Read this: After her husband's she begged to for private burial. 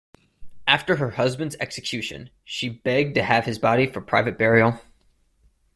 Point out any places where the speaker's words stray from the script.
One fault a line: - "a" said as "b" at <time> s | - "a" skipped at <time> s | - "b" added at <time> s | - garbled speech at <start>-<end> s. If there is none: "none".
- "execution" added at 1.6 s
- "have his body" added at 3.2 s